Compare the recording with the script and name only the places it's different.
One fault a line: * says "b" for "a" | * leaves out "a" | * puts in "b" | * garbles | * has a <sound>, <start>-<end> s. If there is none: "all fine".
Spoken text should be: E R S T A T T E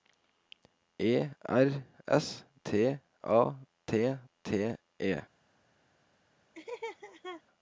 * has a laugh, 6.5-7.4 s